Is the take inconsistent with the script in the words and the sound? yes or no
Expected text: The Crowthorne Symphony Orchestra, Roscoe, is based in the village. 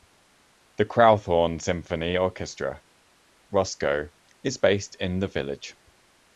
no